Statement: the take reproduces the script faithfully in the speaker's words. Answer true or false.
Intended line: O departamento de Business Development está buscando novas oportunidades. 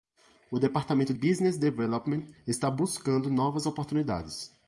false